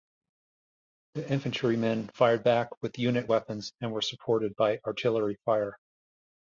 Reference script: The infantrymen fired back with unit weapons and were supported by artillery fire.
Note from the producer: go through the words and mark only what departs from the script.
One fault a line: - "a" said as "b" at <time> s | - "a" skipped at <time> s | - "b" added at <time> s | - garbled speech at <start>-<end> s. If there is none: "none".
none